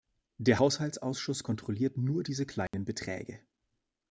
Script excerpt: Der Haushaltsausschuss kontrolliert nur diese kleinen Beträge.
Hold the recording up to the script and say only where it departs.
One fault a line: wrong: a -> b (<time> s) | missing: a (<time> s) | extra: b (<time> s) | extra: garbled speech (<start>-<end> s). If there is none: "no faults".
no faults